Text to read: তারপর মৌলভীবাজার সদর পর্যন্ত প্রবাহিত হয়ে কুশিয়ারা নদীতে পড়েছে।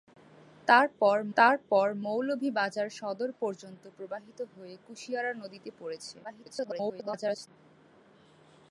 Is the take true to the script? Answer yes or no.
no